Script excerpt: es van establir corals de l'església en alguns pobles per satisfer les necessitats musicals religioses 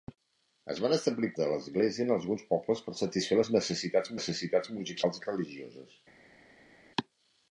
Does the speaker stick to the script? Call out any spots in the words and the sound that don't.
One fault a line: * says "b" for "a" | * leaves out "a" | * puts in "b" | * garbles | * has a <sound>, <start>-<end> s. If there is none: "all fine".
* leaves out "corals"
* puts in "necessitats"